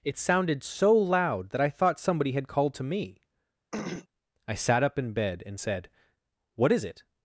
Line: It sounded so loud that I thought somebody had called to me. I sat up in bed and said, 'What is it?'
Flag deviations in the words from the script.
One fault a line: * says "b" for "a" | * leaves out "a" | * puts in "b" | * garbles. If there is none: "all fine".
all fine